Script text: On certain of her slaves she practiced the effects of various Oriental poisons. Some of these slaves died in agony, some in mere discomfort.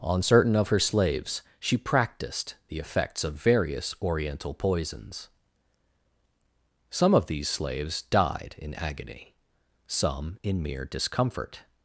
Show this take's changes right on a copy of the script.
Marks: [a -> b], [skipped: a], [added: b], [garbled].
On certain of her slaves she practiced the effects of various Oriental poisons. Some of these slaves died in agony, some in mere discomfort.